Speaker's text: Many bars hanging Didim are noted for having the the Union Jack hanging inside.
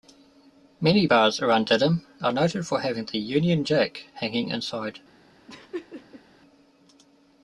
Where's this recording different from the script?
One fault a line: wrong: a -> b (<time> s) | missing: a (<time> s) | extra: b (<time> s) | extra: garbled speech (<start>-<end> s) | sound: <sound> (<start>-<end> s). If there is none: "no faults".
wrong: hanging -> around (1.4 s)
missing: the (3.2 s)
sound: laugh (5.5-6.2 s)